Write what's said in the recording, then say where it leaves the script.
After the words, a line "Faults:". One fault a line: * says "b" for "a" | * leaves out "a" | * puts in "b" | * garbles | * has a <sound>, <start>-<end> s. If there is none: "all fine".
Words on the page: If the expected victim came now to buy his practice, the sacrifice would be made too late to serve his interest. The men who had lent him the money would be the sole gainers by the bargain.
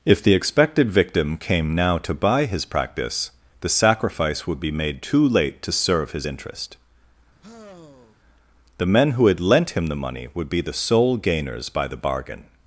If the expected victim came now to buy his practice, the sacrifice would be made too late to serve his interest. The men who had lent him the money would be the sole gainers by the bargain.
Faults:
* has a sigh, 7.4-8.1 s